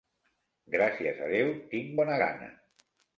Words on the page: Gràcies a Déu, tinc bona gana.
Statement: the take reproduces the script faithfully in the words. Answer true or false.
true